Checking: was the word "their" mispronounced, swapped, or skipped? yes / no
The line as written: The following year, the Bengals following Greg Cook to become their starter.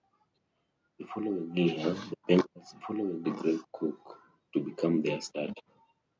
no